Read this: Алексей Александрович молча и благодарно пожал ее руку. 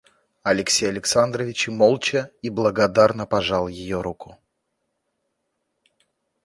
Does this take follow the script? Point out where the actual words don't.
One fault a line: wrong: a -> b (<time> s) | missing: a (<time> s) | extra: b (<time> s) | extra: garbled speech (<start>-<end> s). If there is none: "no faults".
no faults